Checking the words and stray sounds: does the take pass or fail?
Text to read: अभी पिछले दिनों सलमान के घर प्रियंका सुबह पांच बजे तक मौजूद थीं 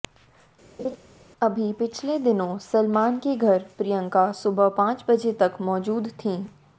fail